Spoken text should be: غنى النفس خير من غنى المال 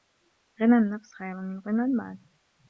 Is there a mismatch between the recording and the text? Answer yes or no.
no